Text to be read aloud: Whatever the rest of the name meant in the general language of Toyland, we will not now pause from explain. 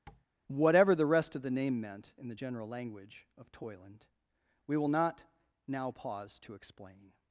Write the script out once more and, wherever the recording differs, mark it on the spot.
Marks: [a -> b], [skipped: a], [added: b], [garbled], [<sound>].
[tap] Whatever the rest of the name meant in the general language of Toyland, we will not now pause [from -> to] explain.